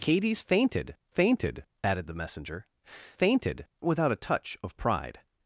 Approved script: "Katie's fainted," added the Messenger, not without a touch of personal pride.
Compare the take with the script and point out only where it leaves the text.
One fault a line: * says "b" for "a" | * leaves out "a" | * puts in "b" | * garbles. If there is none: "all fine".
* puts in "fainted"
* says "fainted" for "not"
* leaves out "personal"